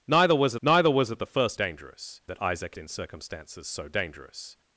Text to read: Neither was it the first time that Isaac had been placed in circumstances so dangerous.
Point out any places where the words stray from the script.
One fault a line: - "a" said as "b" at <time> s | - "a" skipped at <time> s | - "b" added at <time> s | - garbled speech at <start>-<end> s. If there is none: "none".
- "neither was" added at 0.6 s
- "time" said as "dangerous" at 1.5 s
- "had been placed" skipped at 2.8 s